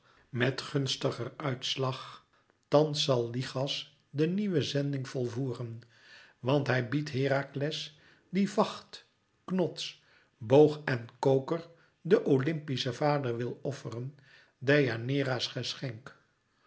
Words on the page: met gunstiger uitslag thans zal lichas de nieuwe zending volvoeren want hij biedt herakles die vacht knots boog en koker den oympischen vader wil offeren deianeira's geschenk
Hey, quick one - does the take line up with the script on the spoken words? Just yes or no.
yes